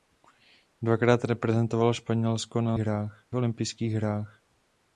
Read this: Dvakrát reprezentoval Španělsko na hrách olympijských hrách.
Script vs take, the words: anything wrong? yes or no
no